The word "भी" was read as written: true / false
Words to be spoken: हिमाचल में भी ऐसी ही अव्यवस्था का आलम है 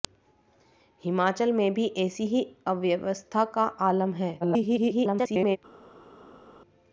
true